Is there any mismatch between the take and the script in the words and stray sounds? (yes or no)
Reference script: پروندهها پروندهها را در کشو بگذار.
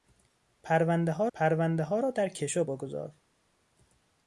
no